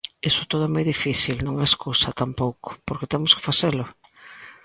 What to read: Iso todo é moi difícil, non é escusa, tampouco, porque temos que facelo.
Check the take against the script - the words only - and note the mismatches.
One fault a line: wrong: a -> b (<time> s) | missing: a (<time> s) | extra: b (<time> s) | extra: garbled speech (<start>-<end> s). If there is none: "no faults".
no faults